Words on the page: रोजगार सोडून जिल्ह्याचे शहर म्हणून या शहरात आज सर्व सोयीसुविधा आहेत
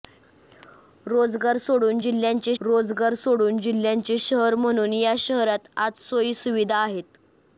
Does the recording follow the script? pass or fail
fail